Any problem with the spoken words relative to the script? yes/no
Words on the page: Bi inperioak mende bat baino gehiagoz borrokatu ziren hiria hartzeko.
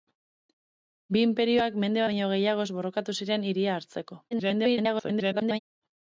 yes